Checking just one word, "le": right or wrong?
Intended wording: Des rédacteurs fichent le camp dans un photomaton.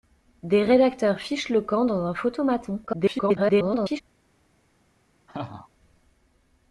right